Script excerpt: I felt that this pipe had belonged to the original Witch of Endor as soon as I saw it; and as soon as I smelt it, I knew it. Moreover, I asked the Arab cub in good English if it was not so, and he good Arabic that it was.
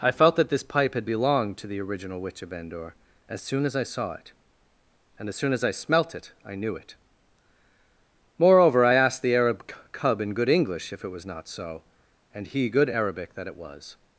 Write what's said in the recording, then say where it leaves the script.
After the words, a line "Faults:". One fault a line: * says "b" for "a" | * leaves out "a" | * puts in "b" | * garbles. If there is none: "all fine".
I felt that this pipe had belonged to the original Witch of Endor as soon as I saw it; and as soon as I smelt it, I knew it. Moreover, I asked the Arab cub in good English if it was not so, and he good Arabic that it was.
Faults:
all fine